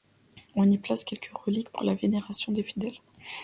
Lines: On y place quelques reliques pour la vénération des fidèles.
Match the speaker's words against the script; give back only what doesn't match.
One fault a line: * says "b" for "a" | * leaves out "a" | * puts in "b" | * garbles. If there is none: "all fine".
all fine